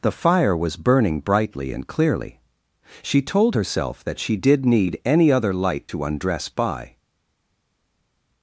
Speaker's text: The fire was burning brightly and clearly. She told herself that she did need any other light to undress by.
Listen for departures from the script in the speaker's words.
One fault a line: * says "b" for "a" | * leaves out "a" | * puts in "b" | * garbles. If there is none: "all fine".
all fine